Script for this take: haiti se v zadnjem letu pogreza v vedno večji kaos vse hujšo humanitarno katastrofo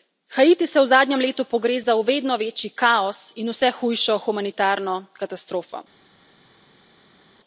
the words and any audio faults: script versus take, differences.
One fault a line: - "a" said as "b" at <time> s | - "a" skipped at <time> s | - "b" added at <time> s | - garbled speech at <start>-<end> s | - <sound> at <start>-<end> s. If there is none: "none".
- "in" added at 3.4 s